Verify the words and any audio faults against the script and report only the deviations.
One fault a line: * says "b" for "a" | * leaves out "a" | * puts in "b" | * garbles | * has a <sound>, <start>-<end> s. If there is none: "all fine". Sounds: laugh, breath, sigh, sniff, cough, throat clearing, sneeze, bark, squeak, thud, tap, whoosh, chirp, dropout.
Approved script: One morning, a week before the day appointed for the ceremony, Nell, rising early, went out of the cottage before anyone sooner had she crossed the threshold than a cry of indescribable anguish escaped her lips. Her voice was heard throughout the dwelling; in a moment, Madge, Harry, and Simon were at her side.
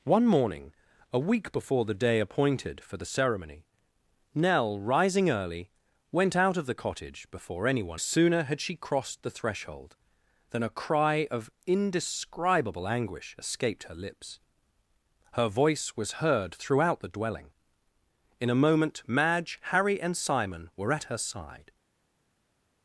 all fine